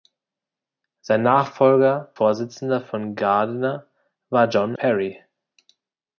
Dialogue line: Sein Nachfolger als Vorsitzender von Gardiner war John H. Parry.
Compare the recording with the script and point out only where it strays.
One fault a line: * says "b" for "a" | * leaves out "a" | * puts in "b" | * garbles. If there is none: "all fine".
* leaves out "als"
* leaves out "H"